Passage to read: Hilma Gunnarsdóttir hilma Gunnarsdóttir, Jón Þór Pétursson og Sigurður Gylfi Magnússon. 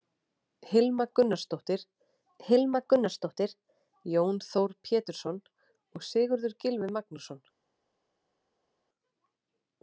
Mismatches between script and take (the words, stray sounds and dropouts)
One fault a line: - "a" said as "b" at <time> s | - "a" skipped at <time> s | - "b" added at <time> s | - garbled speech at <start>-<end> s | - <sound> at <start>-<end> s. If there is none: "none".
none